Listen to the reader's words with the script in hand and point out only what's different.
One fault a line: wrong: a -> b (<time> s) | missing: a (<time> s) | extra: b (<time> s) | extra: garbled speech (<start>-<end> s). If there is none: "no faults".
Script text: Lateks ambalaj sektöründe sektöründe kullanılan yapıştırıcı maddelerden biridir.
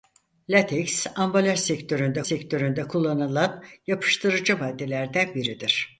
no faults